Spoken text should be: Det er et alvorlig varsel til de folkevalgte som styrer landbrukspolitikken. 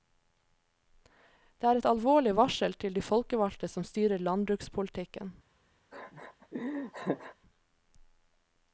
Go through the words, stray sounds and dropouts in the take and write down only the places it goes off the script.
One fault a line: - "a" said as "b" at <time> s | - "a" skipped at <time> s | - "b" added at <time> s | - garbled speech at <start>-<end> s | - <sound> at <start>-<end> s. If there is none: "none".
- laugh at 5.9-7.3 s